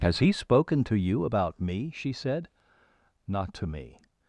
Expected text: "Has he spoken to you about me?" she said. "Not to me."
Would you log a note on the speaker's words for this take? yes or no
no